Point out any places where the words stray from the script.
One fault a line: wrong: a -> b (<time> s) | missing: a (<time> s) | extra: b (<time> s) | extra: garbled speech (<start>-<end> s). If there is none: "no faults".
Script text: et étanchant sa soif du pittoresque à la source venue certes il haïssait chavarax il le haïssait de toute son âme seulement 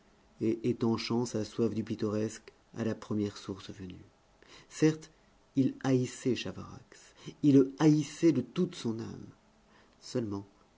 extra: première (2.9 s)